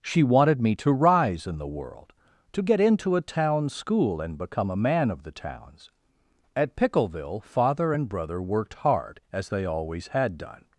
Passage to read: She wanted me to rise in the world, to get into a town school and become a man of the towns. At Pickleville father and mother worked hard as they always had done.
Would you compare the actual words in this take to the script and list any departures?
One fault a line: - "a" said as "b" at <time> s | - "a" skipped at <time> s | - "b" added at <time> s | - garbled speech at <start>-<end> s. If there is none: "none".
- "mother" said as "brother" at 8.1 s